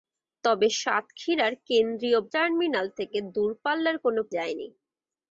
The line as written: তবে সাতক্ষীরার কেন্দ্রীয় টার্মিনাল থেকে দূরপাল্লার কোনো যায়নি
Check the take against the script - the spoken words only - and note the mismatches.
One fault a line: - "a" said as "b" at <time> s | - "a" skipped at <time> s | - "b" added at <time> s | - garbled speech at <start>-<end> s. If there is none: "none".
none